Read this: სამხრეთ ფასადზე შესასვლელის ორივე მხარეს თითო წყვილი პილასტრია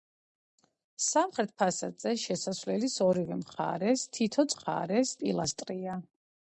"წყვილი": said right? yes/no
no